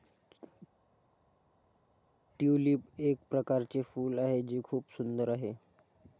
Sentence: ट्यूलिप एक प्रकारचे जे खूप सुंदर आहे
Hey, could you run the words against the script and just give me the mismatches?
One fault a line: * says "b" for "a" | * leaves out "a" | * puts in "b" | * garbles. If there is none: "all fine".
* puts in "फूल आहे"